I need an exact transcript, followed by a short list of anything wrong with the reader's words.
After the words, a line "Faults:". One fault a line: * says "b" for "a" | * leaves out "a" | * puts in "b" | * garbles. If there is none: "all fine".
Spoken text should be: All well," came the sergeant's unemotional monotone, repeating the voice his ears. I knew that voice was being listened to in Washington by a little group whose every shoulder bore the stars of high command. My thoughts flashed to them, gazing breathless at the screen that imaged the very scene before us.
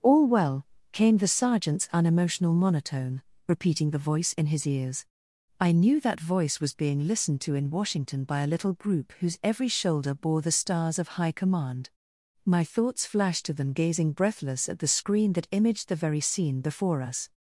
All well," came the sergeant's unemotional monotone, repeating the voice in his ears. I knew that voice was being listened to in Washington by a little group whose every shoulder bore the stars of high command. My thoughts flashed to them, gazing breathless at the screen that imaged the very scene before us.
Faults:
* puts in "in"